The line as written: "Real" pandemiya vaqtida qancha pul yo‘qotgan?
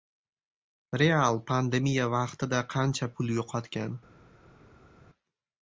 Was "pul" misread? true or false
false